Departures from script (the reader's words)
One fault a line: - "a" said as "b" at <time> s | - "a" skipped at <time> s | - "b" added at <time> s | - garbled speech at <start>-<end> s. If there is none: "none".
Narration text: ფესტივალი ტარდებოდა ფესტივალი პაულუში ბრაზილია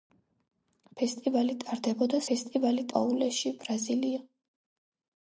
none